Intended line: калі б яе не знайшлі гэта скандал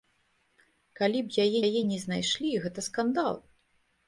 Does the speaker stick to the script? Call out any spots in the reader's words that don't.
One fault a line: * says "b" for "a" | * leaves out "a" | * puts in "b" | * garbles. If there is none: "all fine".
* puts in "яе"